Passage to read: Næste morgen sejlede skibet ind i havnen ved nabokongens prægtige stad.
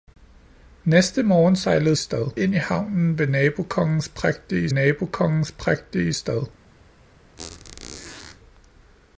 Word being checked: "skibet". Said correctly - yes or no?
no